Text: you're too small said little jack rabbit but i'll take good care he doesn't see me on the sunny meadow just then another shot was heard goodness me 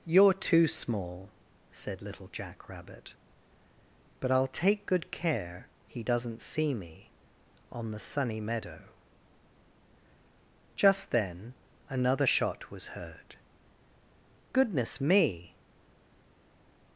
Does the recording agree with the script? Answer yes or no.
yes